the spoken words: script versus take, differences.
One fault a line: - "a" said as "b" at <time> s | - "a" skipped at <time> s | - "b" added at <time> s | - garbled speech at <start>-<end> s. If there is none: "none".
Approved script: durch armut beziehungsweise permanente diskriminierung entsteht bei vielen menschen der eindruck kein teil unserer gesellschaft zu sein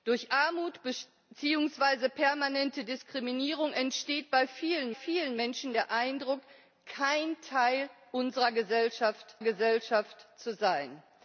- "vielen" added at 4.9 s
- "gesellschaft" added at 9.4 s